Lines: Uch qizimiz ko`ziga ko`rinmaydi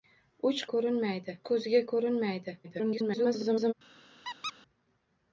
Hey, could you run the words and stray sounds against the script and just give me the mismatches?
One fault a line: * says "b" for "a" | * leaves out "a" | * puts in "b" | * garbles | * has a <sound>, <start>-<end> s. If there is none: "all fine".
* says "ko`rinmaydi" for "qizimiz"
* garbles
* has a squeak, 4.2-4.5 s